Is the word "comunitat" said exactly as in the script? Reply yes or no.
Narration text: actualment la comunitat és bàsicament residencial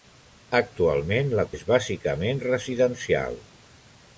no